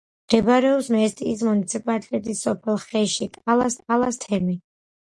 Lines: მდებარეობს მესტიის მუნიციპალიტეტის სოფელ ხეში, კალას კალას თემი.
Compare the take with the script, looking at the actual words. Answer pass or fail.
pass